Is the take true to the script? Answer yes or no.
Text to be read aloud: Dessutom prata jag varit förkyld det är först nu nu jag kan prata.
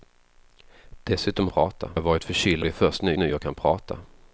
yes